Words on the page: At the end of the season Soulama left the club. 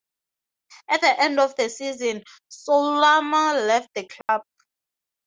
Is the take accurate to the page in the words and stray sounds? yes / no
no